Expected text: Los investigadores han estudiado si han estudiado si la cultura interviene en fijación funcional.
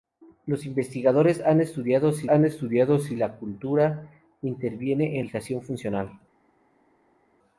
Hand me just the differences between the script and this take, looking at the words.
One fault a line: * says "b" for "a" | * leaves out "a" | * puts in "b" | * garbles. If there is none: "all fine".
all fine